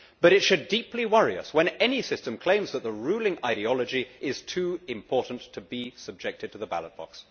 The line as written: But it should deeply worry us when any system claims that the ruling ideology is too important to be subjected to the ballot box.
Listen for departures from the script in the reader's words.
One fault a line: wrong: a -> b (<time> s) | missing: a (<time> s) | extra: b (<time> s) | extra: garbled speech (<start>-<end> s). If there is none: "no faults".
no faults